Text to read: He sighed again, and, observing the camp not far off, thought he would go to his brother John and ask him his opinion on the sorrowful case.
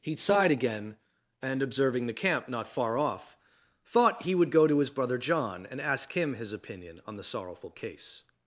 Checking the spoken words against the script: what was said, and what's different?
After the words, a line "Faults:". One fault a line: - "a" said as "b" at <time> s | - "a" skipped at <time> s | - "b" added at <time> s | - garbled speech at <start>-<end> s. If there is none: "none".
He sighed again, and, observing the camp not far off, thought he would go to his brother John and ask him his opinion on the sorrowful case.
Faults:
none